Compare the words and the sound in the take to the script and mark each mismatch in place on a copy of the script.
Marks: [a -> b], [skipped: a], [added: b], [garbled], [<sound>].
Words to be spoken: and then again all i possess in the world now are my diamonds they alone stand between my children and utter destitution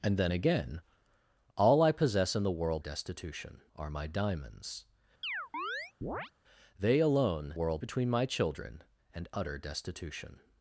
and then again all i possess in the world [now -> destitution] are my diamonds [chirp] they alone [stand -> world] between my children and utter destitution